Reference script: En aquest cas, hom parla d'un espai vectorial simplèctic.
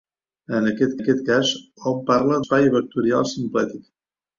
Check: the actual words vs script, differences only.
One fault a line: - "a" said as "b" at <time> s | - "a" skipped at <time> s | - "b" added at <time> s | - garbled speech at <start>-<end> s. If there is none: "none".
- "aquest" added at 1.0 s
- "d'un" skipped at 2.4 s